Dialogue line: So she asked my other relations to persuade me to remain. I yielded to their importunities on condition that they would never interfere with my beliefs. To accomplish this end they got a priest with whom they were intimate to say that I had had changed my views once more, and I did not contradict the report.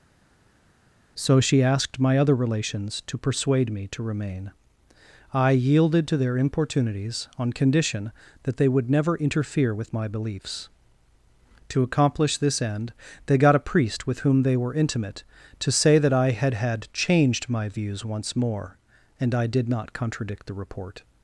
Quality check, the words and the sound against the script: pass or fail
pass